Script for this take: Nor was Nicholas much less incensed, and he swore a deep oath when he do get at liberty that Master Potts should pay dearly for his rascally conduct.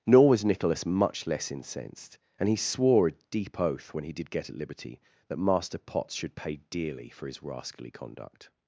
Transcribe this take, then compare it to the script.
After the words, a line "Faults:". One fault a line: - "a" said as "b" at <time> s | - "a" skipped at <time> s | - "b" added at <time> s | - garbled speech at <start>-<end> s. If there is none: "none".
Nor was Nicholas much less incensed, and he swore a deep oath when he did get at liberty that Master Potts should pay dearly for his rascally conduct.
Faults:
- "do" said as "did" at 4.1 s